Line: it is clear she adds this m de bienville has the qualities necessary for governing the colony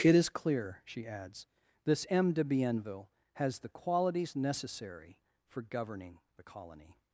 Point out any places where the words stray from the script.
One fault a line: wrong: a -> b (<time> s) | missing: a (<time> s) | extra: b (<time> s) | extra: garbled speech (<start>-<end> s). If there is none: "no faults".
no faults